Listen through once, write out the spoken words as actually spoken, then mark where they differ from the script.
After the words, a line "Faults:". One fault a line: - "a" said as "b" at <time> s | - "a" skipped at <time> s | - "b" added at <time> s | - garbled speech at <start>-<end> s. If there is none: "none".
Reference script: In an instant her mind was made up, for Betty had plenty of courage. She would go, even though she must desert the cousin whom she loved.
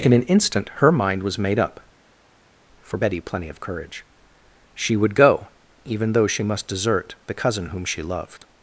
In an instant her mind was made up, for Betty plenty of courage. She would go, even though she must desert the cousin whom she loved.
Faults:
- "had" skipped at 3.2 s